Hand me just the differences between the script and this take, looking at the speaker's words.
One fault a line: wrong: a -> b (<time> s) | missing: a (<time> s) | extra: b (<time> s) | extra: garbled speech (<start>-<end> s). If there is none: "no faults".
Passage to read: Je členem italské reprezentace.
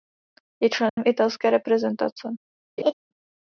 no faults